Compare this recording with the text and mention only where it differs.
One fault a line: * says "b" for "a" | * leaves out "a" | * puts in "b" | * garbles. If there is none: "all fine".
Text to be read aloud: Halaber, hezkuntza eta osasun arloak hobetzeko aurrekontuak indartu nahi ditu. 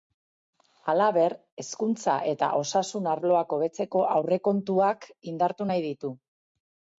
all fine